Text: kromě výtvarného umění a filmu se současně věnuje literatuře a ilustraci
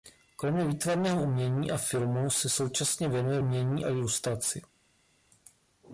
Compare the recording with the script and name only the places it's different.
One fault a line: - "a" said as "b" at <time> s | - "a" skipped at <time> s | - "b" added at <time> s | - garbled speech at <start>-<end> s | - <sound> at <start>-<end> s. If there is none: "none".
- "literatuře" said as "umění" at 3.4 s